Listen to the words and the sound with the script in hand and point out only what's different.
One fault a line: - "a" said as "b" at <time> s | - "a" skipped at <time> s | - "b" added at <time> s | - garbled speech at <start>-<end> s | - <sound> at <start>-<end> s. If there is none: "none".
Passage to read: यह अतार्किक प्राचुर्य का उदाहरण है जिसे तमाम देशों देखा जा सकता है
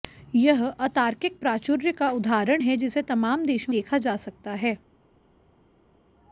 none